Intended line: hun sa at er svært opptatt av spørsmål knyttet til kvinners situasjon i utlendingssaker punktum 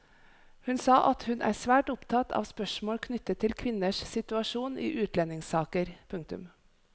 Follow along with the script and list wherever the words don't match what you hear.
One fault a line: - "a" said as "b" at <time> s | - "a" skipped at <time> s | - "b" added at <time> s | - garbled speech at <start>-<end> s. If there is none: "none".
- "hun" added at 1.3 s